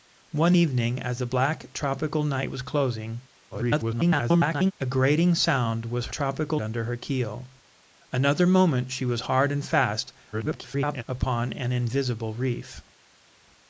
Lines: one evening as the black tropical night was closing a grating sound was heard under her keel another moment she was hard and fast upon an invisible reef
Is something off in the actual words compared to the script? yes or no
yes